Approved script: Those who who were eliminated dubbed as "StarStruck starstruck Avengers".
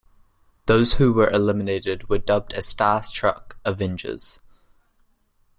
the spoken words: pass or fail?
fail